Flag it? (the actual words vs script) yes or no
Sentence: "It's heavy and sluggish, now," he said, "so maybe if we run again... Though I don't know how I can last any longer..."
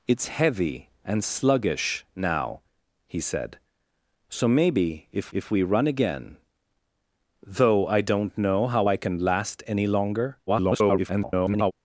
yes